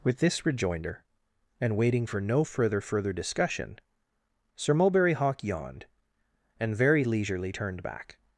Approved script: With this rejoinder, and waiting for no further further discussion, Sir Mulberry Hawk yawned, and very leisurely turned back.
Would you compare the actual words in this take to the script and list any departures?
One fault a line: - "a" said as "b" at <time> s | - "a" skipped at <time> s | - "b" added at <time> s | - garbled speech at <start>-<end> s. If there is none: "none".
none